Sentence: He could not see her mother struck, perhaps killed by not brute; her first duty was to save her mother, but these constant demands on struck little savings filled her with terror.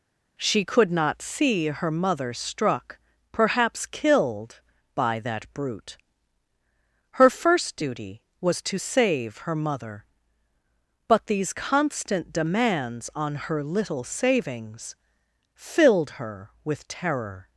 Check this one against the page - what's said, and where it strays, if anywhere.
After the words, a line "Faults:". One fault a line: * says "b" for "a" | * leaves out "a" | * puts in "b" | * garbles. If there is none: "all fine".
She could not see her mother struck, perhaps killed by that brute; her first duty was to save her mother, but these constant demands on her little savings filled her with terror.
Faults:
* says "She" for "He"
* says "that" for "not"
* says "her" for "struck"